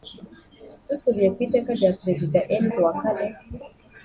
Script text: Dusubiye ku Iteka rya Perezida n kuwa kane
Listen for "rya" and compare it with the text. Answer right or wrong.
right